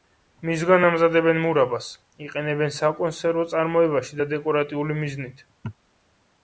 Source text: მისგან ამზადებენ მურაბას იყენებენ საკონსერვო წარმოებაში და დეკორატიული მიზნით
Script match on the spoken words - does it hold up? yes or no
yes